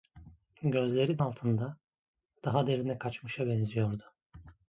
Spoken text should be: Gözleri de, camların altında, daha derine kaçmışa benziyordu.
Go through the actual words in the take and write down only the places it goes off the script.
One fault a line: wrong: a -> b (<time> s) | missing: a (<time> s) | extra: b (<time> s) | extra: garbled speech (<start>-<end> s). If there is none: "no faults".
missing: de camların (1.2 s)